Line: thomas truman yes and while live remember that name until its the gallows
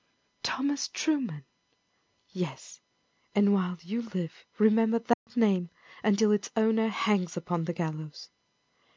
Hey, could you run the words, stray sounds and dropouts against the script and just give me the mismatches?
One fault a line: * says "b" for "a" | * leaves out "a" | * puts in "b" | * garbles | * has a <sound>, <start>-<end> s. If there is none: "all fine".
* puts in "you"
* has a dropout, 5.1-5.3 s
* puts in "owner hangs upon"